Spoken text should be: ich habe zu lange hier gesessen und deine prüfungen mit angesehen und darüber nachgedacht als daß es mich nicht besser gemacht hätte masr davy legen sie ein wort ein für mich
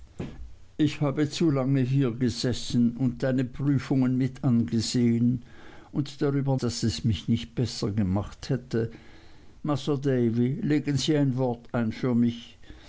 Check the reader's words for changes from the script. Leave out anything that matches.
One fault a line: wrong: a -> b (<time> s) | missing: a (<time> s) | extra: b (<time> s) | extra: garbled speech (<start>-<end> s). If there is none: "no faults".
missing: nachgedacht als (6.6 s)